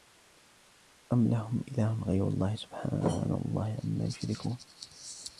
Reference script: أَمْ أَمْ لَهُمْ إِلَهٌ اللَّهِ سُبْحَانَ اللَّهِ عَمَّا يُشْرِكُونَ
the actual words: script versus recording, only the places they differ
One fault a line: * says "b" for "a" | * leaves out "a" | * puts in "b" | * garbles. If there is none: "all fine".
* leaves out "أَمْ"
* puts in "غَيْرُ"